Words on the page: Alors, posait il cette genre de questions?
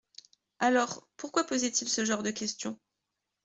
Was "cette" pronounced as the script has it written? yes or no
no